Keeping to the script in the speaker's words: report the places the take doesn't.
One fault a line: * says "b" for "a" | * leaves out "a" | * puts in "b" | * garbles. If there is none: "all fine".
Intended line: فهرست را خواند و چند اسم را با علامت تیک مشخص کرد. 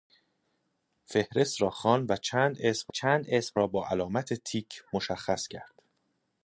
* puts in "چند اسم"